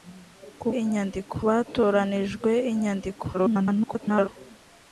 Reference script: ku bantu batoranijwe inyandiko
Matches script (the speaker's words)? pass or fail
fail